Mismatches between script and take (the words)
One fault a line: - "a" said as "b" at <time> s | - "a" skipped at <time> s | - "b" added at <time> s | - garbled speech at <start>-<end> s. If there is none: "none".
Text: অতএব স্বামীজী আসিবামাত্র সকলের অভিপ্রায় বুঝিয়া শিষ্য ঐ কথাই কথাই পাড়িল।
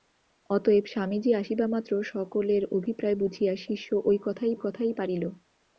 none